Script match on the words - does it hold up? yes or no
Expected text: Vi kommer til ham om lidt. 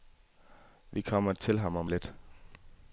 yes